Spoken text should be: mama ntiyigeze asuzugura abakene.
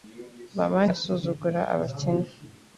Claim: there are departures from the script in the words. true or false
true